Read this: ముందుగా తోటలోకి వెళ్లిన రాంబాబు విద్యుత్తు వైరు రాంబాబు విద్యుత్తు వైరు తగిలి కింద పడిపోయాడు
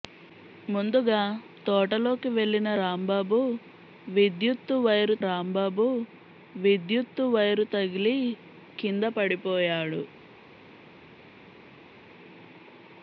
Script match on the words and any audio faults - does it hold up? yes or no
yes